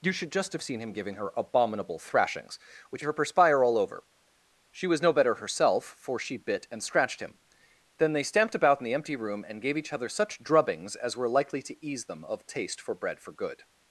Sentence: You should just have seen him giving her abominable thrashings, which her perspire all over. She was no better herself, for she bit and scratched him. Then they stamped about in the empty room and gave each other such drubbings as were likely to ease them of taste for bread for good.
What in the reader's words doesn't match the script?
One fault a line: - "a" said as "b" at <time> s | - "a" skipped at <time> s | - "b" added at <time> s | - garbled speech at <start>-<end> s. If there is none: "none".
none